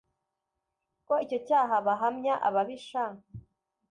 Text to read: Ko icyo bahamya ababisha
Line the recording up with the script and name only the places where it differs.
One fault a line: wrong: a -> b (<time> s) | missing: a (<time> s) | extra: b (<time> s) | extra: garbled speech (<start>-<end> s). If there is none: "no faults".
extra: cyaha (1.5 s)